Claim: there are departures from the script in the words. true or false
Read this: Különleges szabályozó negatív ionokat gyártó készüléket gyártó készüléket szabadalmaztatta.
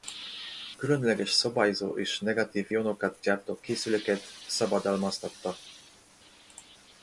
true